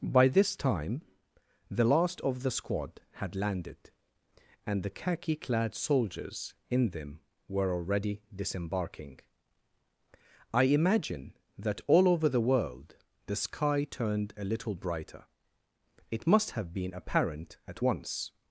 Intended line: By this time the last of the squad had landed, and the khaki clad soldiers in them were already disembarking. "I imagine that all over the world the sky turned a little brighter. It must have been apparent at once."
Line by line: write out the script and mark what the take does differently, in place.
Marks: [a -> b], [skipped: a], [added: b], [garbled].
By this time the last of the squad had landed, and the khaki clad soldiers in them were already disembarking. "I imagine that all over the world the sky turned a little brighter. It must have been apparent at once."